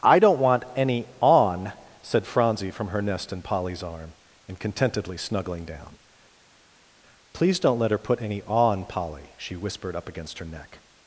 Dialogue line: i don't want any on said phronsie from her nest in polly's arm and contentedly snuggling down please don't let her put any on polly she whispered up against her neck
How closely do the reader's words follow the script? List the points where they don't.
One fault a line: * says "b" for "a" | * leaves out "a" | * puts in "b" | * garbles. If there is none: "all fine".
all fine